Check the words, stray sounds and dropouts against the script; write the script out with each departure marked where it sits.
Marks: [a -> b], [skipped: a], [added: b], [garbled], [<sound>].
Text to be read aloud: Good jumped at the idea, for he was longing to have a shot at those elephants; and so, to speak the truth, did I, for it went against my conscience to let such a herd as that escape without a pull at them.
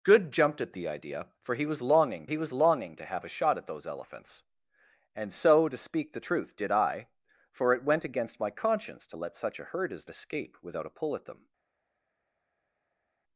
Good jumped at the idea, for he was longing [added: he was longing] to have a shot at those elephants; and so, to speak the truth, did I, for it went against my conscience to let such a herd as [skipped: that] escape without a pull at them.